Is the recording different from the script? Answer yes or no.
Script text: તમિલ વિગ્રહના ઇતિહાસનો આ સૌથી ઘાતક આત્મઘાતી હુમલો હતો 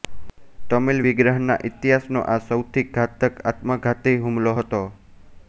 no